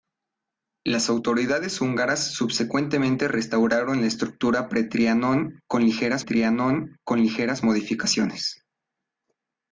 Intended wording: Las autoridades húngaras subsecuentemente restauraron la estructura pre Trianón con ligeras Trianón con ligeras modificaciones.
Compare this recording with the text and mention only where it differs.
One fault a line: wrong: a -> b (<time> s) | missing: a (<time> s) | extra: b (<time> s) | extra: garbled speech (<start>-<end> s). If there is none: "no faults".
no faults